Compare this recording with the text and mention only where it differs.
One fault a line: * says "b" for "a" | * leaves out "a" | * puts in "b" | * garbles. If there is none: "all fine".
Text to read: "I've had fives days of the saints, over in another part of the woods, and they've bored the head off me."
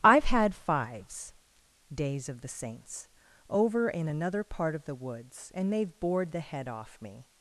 all fine